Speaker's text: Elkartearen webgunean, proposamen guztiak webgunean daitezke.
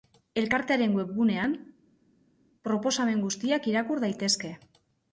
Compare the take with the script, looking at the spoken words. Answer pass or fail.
fail